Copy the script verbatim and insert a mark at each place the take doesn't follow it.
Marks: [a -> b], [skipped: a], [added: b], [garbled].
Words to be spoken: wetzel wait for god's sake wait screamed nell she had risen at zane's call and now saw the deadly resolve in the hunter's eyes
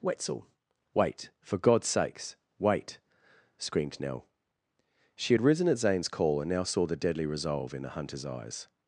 wetzel wait for god's [sake -> sakes] wait screamed nell she had risen at zane's call and now saw the deadly resolve in the hunter's eyes